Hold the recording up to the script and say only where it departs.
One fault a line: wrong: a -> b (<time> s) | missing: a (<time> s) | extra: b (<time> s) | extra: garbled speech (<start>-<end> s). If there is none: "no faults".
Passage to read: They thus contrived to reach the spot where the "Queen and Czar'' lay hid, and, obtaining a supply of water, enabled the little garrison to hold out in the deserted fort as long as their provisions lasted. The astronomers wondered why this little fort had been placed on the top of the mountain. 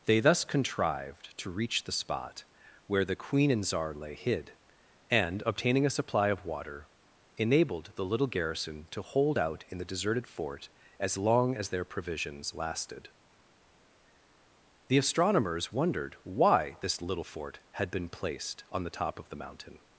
no faults